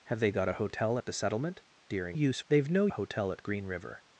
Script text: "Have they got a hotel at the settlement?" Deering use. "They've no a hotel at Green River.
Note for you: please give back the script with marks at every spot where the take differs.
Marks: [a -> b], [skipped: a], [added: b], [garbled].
"Have they got a hotel at the settlement?" Deering use. "They've no a hotel at Green River.